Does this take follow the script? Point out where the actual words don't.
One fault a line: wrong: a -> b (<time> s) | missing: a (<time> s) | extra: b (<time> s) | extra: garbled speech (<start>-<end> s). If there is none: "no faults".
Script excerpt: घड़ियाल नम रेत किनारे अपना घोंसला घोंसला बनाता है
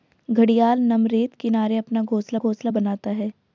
no faults